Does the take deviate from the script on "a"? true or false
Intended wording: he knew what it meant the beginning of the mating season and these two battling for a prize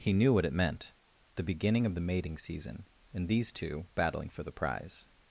true